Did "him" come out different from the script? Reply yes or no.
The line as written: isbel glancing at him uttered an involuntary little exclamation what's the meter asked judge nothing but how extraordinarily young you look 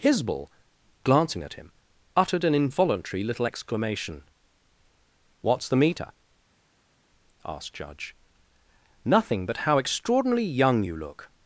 no